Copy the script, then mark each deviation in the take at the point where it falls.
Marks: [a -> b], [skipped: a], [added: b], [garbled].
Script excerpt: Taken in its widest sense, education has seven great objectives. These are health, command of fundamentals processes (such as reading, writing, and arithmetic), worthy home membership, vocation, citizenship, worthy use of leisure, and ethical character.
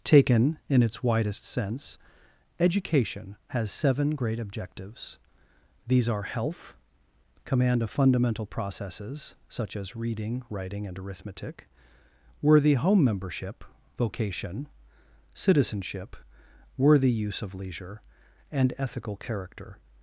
Taken in its widest sense, education has seven great objectives. These are health, command of [fundamentals -> fundamental] processes (such as reading, writing, and arithmetic), worthy home membership, vocation, citizenship, worthy use of leisure, and ethical character.